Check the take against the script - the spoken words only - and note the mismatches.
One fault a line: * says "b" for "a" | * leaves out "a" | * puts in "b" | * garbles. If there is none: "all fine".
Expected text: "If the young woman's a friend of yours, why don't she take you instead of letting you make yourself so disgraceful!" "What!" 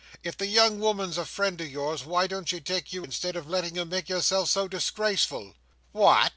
all fine